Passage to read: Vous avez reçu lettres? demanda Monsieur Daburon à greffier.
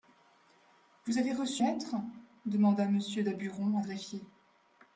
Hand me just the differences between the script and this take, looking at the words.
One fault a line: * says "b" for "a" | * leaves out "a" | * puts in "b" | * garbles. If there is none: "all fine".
all fine